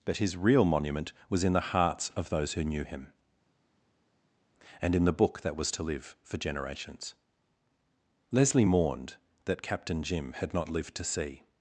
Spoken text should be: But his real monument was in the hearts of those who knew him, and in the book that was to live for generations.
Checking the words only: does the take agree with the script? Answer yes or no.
no